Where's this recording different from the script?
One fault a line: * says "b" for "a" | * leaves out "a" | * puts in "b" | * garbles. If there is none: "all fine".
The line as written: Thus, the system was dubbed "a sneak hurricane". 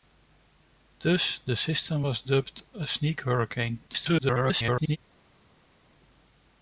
* garbles